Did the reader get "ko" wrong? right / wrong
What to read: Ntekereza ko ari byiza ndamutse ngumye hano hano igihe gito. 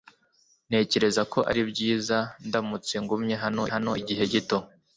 right